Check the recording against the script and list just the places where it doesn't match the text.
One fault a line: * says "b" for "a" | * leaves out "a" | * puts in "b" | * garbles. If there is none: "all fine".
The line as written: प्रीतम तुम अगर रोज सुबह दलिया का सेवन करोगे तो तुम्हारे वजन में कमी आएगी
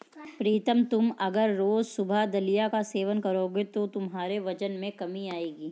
all fine